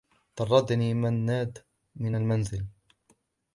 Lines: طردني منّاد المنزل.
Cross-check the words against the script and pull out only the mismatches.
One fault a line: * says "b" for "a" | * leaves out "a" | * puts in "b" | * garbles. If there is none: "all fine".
* puts in "من"